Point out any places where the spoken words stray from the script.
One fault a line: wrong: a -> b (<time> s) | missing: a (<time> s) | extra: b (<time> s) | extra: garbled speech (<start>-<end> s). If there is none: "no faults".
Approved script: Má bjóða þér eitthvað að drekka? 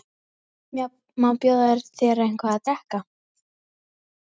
no faults